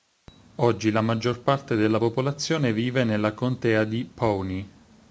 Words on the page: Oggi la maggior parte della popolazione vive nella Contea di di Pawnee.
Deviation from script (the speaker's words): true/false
true